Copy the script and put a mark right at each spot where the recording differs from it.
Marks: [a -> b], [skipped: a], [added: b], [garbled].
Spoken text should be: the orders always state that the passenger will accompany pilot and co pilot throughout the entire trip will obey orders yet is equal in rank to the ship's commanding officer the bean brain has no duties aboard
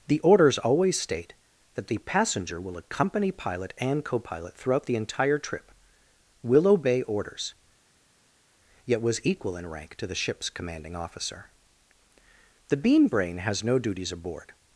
the orders always state that the passenger will accompany pilot and co pilot throughout the entire trip will obey orders yet [is -> was] equal in rank to the ship's commanding officer the bean brain has no duties aboard